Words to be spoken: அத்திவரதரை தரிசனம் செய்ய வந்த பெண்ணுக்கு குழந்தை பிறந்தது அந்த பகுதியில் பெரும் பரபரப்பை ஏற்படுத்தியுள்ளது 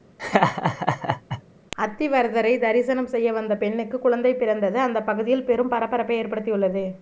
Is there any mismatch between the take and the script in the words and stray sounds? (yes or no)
yes